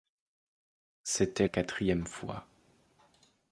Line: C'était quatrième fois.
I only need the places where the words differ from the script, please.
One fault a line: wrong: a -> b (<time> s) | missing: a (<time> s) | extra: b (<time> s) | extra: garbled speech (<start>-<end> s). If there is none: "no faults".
no faults